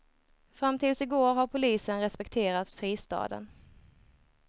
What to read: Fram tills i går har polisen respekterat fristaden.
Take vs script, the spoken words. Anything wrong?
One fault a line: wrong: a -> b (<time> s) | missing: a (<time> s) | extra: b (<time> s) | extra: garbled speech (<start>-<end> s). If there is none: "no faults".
no faults